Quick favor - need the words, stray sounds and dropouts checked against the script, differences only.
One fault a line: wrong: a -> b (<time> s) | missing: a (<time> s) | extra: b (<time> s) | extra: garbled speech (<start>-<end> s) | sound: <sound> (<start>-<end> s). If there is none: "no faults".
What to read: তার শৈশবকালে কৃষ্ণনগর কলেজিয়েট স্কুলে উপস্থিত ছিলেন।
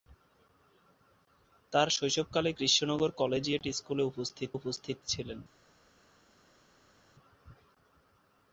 extra: উপস্থিত (4.5 s)